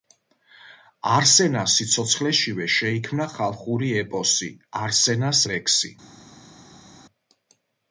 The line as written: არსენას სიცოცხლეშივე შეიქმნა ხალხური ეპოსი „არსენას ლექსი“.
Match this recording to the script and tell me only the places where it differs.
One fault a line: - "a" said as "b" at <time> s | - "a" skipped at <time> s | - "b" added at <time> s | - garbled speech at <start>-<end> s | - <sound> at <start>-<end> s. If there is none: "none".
none